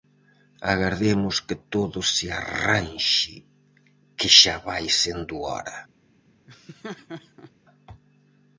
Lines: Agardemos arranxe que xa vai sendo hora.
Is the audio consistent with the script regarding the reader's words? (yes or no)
no